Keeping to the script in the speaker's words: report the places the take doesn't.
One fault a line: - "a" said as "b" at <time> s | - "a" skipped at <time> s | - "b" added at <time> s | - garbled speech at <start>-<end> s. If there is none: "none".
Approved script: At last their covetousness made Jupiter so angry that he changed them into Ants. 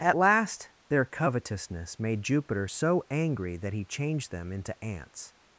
none